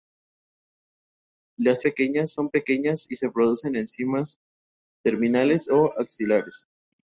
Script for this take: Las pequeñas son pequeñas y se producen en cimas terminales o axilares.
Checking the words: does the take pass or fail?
pass